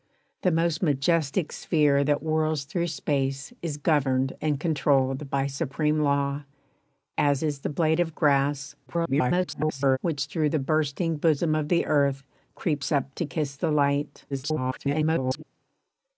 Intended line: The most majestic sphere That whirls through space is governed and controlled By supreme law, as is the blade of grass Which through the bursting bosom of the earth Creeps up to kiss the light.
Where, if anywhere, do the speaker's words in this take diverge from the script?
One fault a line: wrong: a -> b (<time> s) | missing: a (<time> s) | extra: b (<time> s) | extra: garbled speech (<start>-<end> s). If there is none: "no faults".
extra: garbled speech (8.9-10.0 s)
extra: garbled speech (14.3-15.4 s)